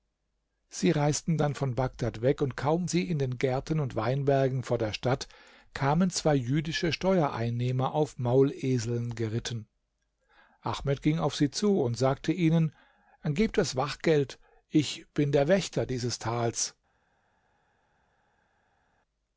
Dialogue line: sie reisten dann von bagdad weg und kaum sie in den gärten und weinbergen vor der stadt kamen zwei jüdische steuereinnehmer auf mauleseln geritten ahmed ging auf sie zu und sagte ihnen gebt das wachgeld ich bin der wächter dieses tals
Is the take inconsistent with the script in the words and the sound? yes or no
no